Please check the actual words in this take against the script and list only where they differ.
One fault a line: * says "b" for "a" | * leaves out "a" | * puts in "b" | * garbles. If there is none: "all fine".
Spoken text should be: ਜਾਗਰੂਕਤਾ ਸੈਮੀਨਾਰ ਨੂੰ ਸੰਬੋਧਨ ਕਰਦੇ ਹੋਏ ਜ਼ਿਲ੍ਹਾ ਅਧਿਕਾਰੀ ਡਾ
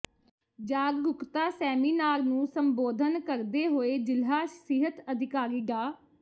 * puts in "ਸਿਹਤ"